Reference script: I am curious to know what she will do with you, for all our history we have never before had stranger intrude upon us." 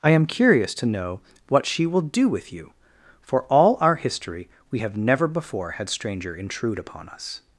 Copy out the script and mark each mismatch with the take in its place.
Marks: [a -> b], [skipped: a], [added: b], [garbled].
I am curious to know what she will do with you, for all our history we have never before had stranger intrude upon us."